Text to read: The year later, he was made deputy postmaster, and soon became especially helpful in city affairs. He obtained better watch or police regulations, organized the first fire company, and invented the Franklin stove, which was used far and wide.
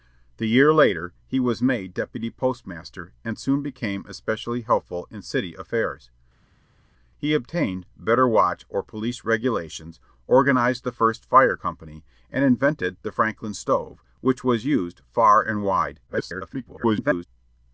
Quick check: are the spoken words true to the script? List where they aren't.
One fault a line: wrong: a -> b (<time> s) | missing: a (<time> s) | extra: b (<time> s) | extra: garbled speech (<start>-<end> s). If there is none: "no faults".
extra: garbled speech (16.1-17.3 s)